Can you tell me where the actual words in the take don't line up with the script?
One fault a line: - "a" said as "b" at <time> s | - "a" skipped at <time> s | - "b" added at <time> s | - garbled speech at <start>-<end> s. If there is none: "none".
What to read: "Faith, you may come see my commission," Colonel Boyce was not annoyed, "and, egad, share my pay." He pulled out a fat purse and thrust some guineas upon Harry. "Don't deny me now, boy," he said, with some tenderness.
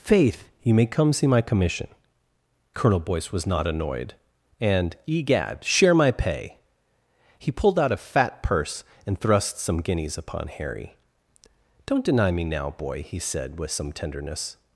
none